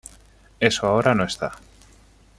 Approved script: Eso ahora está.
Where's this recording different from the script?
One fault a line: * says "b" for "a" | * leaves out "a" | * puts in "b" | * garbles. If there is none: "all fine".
* puts in "no"